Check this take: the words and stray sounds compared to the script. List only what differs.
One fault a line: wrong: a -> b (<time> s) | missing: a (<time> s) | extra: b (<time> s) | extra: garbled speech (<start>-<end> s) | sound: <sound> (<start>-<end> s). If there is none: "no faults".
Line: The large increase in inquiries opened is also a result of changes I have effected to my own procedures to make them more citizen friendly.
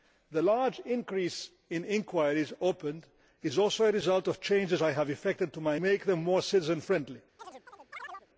missing: own procedures to (5.8 s)
sound: chirp (7.4-8.3 s)